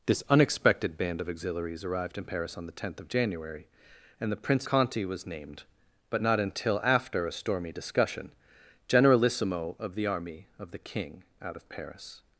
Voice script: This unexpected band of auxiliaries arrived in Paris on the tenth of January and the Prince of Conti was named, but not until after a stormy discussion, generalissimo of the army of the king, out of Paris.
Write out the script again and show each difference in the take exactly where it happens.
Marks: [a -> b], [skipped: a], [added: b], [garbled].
This unexpected band of auxiliaries arrived in Paris on the tenth of January and the Prince [skipped: of] Conti was named, but not until after a stormy discussion, generalissimo of the army of the king, out of Paris.